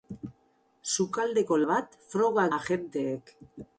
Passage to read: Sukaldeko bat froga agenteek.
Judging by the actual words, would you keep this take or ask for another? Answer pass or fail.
pass